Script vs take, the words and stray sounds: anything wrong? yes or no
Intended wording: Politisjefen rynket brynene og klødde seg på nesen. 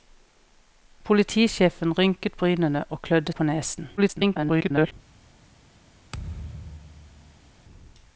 yes